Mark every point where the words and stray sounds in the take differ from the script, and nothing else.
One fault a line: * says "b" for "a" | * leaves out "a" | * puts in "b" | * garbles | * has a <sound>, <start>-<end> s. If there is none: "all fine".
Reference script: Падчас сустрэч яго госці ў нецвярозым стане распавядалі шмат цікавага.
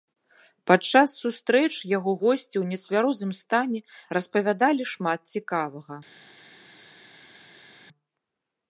all fine